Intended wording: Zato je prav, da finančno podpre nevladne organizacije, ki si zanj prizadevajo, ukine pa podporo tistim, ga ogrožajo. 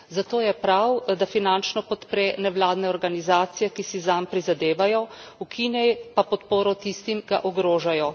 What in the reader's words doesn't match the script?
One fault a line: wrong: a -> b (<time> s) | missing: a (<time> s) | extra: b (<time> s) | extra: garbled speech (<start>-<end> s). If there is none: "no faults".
no faults